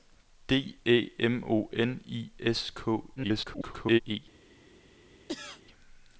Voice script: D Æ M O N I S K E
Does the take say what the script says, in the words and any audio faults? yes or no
no